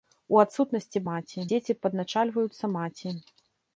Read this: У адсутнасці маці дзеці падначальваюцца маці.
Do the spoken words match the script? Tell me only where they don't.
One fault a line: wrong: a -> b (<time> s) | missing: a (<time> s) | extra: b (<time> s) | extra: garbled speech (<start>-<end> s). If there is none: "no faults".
no faults